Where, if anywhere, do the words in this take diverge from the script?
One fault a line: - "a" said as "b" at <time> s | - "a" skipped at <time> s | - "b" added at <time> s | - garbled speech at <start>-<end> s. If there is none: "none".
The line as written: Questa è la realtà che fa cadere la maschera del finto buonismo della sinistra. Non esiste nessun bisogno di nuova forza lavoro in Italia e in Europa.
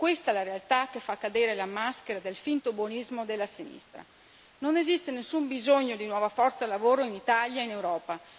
none